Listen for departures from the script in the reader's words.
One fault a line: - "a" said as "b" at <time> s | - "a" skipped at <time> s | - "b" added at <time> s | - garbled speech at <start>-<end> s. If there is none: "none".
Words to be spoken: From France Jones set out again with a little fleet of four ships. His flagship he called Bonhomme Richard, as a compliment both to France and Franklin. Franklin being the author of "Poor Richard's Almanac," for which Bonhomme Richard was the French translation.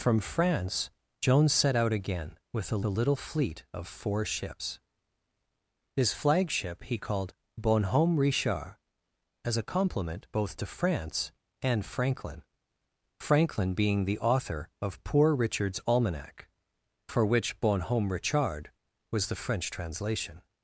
- "a" added at 2.8 s